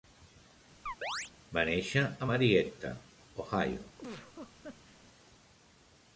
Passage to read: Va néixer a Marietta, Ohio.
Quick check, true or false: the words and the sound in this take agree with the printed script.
false